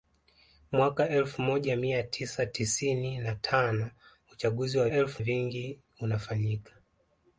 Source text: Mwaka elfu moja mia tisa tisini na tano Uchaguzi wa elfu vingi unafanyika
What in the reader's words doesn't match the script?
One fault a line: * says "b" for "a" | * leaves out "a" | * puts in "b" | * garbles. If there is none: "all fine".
all fine